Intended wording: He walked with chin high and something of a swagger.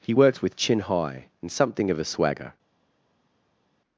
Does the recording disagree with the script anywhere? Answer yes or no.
yes